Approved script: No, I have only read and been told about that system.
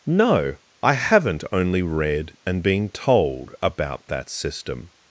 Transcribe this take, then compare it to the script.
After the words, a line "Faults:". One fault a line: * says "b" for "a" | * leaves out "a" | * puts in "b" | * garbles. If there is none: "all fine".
No, I haven't only read and been told about that system.
Faults:
* says "haven't" for "have"